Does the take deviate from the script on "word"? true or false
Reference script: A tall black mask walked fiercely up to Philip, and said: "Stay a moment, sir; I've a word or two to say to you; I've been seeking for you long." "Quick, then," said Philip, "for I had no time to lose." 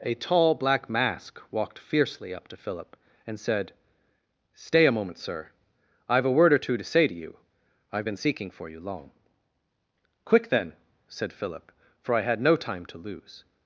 false